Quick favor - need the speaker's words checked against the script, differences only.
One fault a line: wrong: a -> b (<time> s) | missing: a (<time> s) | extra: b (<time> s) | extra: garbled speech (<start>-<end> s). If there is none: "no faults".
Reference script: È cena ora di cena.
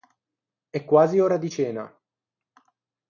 wrong: cena -> quasi (0.8 s)